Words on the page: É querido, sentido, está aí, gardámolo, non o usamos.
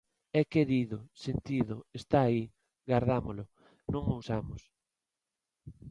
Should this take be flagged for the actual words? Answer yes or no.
no